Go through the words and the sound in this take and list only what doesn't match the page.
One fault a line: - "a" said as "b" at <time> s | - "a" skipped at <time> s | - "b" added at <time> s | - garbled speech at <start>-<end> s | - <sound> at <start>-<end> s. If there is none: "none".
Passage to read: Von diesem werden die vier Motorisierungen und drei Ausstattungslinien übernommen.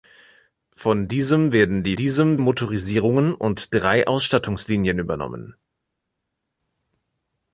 - "vier" said as "diesem" at 1.9 s